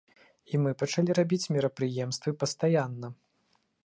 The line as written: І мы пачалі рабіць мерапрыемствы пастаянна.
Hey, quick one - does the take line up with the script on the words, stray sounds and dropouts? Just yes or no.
yes